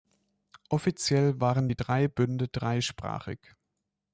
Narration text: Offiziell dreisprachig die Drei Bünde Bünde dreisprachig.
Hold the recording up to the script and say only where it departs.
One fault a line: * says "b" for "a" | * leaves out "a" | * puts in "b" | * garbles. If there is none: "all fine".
* says "waren" for "dreisprachig"
* leaves out "Bünde"